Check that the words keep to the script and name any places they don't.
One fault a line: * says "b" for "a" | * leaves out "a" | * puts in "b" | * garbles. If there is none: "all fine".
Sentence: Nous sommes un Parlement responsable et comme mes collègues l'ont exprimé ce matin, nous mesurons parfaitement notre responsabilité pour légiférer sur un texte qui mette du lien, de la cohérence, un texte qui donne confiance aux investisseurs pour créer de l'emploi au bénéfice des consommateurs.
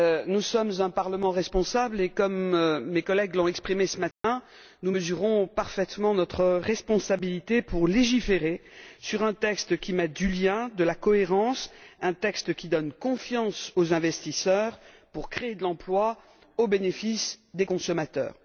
all fine